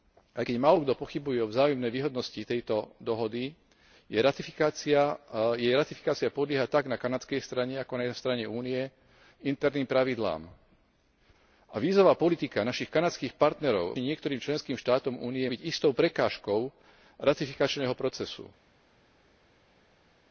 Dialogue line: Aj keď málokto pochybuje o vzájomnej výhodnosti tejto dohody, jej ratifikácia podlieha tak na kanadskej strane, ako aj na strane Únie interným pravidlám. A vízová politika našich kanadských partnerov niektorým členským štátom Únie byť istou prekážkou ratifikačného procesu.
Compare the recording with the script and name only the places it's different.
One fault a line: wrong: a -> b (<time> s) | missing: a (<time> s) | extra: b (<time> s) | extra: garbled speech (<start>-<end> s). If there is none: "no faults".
no faults